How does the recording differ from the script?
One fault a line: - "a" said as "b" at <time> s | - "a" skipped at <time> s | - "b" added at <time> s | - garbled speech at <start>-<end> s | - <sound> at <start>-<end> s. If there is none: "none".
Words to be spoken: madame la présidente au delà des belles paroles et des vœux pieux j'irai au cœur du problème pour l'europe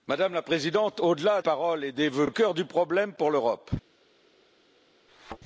- "des belles" skipped at 1.4 s
- "pieux j'irai au" skipped at 2.3 s
- thud at 5.1-5.4 s